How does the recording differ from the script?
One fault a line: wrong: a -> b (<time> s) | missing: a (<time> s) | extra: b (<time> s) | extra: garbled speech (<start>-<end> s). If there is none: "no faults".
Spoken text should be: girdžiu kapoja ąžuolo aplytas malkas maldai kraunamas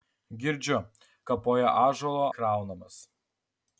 missing: aplytas malkas maldai (2.3 s)